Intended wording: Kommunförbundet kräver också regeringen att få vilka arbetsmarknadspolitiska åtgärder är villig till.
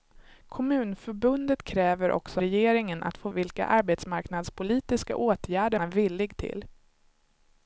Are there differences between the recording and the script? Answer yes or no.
no